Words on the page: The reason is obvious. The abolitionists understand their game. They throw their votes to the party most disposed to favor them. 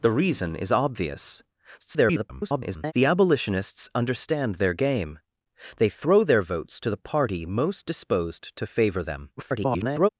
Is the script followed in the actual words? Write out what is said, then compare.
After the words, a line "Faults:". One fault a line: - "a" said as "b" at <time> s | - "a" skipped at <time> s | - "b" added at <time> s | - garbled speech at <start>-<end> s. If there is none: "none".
The reason is obvious. [garbled] The abolitionists understand their game. They throw their votes to the party most disposed to favor them. [garbled]
Faults:
- garbled speech at 1.8-2.9 s
- garbled speech at 9.4-10.1 s